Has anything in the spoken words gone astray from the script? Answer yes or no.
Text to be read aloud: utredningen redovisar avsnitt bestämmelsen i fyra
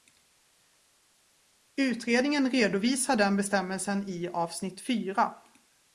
yes